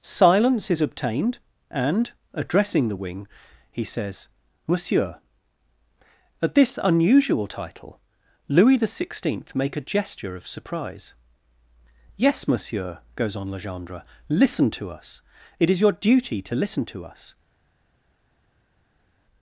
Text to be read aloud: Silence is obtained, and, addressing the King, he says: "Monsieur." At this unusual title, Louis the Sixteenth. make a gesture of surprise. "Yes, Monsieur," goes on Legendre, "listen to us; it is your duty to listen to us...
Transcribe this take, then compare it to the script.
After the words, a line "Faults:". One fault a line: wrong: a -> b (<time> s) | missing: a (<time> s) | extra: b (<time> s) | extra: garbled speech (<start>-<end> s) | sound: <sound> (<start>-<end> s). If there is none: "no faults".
Silence is obtained, and, addressing the Wing, he says: "Monsieur." At this unusual title, Louis the Sixteenth. make a gesture of surprise. "Yes, Monsieur," goes on Legendre, "listen to us; it is your duty to listen to us...
Faults:
wrong: King -> Wing (2.9 s)